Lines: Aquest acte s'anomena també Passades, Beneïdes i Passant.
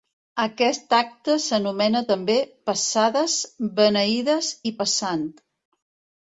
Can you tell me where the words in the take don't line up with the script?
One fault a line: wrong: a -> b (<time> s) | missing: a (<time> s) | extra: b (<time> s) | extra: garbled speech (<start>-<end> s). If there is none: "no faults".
no faults